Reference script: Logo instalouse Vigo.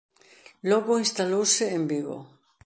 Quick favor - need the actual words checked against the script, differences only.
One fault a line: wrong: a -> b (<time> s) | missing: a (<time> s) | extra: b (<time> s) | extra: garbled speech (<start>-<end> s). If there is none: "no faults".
extra: en (1.8 s)